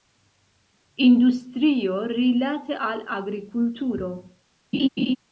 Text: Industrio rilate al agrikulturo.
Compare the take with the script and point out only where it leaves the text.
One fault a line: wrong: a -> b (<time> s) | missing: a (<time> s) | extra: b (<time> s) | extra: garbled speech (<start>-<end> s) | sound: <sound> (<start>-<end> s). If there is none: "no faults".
sound: laugh (4.7-5.2 s)